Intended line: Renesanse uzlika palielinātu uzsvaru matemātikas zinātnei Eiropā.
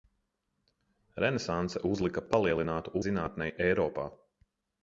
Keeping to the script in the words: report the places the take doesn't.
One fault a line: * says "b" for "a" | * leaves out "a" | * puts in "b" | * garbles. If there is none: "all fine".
* leaves out "uzsvaru matemātikas"